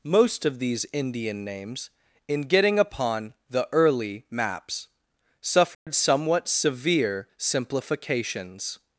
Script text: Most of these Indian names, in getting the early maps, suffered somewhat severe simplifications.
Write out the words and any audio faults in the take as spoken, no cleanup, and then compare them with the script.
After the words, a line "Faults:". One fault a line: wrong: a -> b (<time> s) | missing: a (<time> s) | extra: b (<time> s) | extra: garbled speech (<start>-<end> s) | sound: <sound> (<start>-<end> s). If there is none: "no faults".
Most of these Indian names, in getting upon the early maps, suffered somewhat severe simplifications.
Faults:
extra: upon (2.8 s)
sound: dropout (5.7-5.9 s)